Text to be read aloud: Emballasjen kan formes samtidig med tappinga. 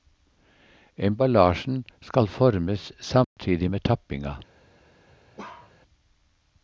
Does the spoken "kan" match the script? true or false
false